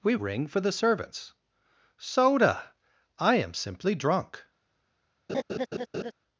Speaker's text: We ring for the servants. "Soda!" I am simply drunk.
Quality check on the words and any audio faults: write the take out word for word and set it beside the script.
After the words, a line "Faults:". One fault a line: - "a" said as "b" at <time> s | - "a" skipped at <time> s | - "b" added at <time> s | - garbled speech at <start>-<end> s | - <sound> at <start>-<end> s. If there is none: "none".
We ring for the servants. "Soda!" I am simply drunk.
Faults:
- laugh at 5.3-6.1 s